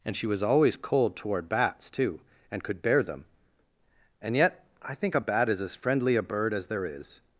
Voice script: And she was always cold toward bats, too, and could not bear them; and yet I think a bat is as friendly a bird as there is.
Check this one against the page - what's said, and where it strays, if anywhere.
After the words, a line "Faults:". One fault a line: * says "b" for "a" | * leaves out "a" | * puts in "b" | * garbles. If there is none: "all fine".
And she was always cold toward bats, too, and could bear them; and yet I think a bat is as friendly a bird as there is.
Faults:
* leaves out "not"